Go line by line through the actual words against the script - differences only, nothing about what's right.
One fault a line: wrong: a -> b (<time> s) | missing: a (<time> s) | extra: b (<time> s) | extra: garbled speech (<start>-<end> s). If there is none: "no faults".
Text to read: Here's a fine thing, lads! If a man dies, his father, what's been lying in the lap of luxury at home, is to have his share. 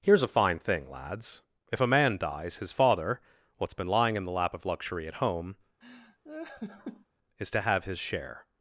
no faults